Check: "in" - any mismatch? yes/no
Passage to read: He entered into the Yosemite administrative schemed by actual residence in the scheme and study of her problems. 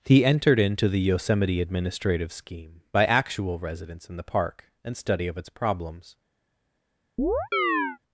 no